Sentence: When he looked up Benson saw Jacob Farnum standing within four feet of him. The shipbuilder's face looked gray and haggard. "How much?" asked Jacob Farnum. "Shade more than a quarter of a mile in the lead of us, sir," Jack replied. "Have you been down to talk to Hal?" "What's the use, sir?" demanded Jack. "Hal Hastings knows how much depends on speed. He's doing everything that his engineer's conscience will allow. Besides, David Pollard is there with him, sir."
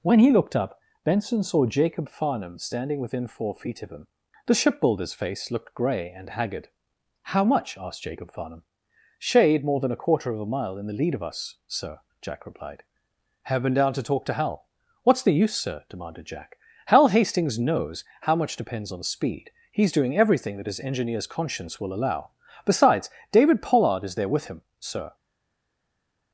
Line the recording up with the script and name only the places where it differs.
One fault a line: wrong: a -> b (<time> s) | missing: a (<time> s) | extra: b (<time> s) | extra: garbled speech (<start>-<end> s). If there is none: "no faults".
missing: you (13.6 s)